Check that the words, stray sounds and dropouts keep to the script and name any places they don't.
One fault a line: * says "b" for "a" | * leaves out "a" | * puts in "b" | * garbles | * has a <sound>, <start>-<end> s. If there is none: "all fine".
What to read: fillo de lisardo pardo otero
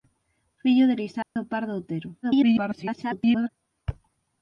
* has a dropout, 1.2-1.4 s
* garbles